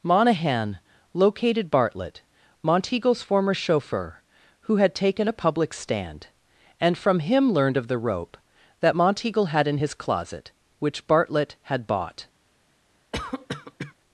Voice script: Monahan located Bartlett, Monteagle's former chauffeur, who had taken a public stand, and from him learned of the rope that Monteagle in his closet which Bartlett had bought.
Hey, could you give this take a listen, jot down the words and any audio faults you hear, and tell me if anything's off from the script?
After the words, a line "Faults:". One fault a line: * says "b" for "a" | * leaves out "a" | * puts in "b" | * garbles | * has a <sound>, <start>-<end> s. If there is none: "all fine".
Monahan located Bartlett, Monteagle's former chauffeur, who had taken a public stand, and from him learned of the rope that Monteagle had in his closet which Bartlett had bought.
Faults:
* puts in "had"
* has a cough, 13.1-13.9 s